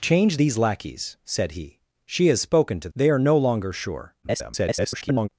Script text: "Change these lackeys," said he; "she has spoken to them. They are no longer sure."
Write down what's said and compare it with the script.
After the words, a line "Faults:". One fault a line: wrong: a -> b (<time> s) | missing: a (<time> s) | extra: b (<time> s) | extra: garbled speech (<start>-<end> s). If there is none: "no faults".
"Change these lackeys," said he; "she has spoken to. They are no longer sure." [garbled]
Faults:
missing: them (2.9 s)
extra: garbled speech (4.2-5.3 s)